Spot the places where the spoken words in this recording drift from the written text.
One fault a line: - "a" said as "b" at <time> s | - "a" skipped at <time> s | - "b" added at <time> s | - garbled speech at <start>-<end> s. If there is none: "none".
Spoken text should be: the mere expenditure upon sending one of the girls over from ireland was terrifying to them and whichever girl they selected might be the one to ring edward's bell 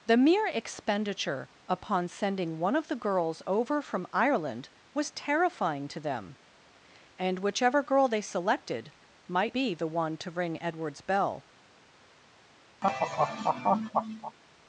none